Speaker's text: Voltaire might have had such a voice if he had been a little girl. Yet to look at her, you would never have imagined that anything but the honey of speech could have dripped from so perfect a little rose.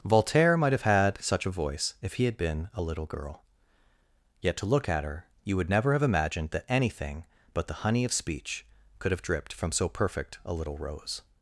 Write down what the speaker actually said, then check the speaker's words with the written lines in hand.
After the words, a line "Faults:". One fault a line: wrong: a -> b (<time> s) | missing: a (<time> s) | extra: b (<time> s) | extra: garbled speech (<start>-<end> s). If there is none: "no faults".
Voltaire might have had such a voice if he had been a little girl. Yet to look at her, you would never have imagined that anything but the honey of speech could have dripped from so perfect a little rose.
Faults:
no faults